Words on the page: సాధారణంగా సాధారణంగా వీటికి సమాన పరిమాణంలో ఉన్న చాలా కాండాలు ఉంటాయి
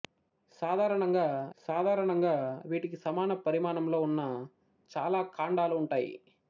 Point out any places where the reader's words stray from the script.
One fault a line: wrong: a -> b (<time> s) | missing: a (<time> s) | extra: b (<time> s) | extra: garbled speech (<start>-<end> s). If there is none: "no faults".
no faults